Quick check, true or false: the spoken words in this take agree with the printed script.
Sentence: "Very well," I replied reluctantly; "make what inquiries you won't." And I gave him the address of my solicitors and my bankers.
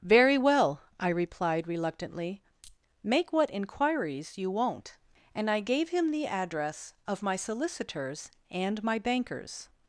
true